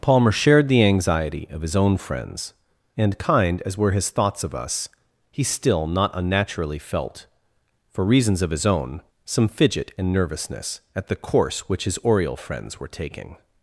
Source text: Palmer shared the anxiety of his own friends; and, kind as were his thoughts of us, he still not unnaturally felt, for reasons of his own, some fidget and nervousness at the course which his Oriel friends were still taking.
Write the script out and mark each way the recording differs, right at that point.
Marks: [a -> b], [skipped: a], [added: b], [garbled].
Palmer shared the anxiety of his own friends; and, kind as were his thoughts of us, he still not unnaturally felt, for reasons of his own, some fidget and nervousness at the course which his Oriel friends were [skipped: still] taking.